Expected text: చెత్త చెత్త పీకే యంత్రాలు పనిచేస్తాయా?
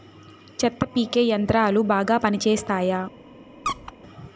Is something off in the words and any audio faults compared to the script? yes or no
yes